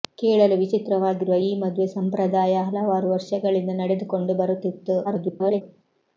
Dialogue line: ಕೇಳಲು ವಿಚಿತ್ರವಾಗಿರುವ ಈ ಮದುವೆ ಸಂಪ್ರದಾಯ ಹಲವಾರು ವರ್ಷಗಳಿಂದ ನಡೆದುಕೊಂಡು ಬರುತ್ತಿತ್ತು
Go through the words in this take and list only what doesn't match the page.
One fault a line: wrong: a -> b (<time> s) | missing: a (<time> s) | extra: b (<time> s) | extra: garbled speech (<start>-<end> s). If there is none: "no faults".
extra: garbled speech (5.0-5.6 s)